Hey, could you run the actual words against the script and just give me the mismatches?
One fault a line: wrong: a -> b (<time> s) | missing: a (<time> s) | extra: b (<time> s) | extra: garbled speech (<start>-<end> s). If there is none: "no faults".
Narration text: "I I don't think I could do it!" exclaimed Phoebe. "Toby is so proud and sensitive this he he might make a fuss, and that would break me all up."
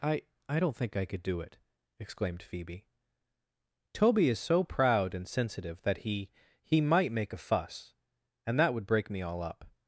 wrong: this -> that (5.8 s)